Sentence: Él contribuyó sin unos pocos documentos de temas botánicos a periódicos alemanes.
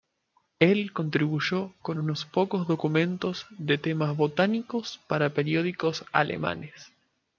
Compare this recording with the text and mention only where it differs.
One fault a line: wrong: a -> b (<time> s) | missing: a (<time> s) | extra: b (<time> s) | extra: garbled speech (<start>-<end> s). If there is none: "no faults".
wrong: sin -> con (1.8 s)
wrong: a -> para (5.1 s)